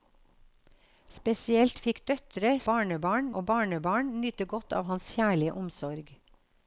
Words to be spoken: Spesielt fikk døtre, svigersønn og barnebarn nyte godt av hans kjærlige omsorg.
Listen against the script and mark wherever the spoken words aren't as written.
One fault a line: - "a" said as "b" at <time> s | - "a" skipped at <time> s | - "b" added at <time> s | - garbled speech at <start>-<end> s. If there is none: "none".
- "svigersønn" said as "barnebarn" at 2.7 s